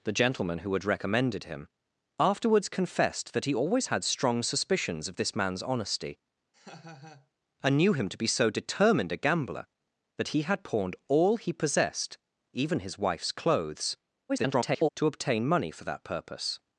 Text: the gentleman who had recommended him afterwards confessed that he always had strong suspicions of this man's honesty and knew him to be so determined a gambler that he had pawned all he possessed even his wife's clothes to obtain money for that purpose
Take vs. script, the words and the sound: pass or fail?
fail